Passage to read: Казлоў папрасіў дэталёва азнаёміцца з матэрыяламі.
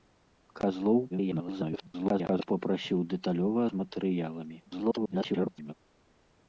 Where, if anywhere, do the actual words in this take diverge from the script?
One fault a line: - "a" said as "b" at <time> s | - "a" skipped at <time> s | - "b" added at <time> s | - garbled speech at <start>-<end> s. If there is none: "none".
- garbled speech at 1.1-2.5 s
- "азнаёміцца" skipped at 3.6 s
- garbled speech at 4.7-5.7 s